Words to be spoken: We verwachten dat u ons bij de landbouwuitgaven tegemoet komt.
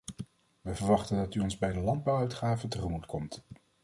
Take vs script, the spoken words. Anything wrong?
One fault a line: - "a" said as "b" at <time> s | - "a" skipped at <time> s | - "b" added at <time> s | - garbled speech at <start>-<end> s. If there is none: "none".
none